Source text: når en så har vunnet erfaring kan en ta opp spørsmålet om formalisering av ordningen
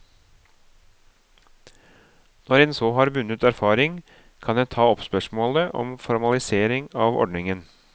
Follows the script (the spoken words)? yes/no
yes